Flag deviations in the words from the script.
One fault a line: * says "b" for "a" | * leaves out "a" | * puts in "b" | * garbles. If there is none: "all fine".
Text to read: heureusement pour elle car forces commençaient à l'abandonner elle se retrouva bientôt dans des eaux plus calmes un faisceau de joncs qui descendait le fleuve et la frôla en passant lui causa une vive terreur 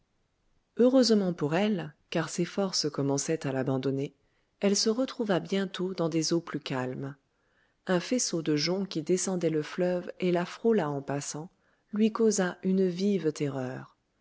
* puts in "ses"